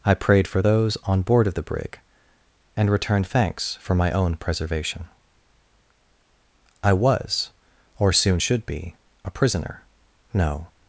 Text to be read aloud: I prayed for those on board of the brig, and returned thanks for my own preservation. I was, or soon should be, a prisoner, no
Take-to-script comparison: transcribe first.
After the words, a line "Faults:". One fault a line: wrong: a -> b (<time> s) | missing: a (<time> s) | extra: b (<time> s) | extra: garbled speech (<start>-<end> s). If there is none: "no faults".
I prayed for those on board of the brig, and returned thanks for my own preservation. I was, or soon should be, a prisoner, no
Faults:
no faults